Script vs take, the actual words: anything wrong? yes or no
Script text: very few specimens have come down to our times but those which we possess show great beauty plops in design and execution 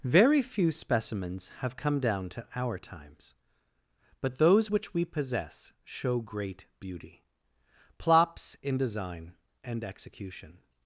no